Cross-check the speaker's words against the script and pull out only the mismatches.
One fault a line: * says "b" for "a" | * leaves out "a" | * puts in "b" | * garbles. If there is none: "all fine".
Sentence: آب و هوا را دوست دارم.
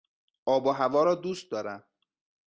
all fine